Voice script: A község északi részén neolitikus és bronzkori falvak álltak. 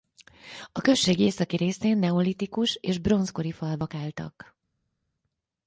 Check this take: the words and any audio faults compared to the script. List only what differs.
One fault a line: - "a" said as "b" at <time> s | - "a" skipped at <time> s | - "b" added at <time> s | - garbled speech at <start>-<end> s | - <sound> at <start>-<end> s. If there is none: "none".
none